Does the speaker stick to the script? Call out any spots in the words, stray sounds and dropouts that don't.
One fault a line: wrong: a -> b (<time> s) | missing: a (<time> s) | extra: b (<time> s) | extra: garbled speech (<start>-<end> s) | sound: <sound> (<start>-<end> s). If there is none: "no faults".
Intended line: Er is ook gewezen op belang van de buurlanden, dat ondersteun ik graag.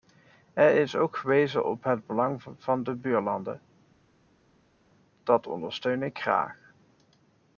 extra: het (1.8 s)